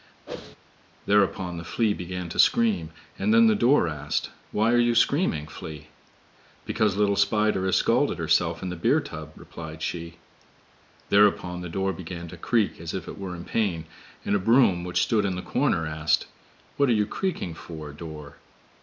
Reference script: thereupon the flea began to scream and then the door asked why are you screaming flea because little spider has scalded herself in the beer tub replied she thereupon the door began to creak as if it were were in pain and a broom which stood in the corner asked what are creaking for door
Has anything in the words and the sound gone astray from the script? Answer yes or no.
yes